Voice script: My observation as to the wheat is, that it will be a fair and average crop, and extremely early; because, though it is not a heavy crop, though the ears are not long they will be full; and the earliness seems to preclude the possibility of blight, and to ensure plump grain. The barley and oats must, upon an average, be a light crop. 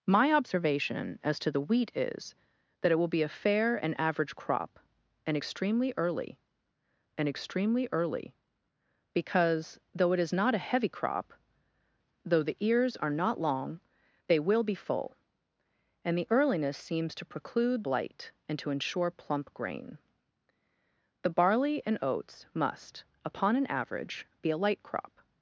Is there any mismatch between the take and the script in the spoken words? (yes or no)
yes